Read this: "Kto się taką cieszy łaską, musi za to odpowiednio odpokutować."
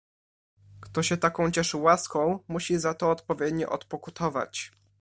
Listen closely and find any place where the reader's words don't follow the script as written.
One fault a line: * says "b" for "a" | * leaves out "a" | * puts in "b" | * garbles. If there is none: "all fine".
all fine